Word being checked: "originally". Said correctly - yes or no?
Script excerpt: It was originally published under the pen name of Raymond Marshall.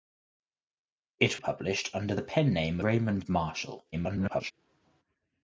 no